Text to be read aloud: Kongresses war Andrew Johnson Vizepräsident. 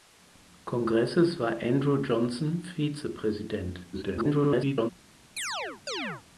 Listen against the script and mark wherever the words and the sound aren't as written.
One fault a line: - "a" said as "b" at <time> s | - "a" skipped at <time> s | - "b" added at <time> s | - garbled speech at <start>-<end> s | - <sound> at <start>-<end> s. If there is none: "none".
- garbled speech at 3.9-4.9 s
- chirp at 5.4-6.2 s